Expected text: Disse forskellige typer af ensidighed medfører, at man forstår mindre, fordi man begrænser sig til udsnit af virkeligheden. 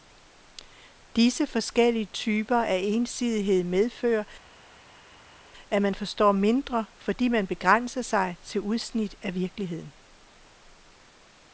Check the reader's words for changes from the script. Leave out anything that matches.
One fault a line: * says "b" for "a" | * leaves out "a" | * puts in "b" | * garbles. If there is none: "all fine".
all fine